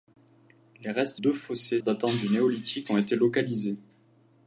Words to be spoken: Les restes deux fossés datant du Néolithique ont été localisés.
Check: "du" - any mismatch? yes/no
no